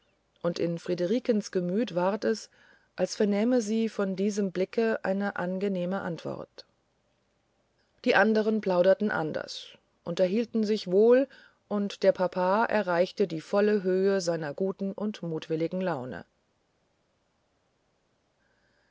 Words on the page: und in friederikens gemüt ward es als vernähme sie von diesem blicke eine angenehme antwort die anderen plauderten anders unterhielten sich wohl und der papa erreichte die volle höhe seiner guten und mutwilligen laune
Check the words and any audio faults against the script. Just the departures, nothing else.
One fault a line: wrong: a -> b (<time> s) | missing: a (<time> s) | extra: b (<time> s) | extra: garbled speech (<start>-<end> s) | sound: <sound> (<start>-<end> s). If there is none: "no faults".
no faults